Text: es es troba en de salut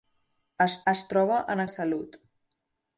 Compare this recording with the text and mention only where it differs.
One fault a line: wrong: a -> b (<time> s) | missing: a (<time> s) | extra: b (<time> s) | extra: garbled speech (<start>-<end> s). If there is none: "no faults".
no faults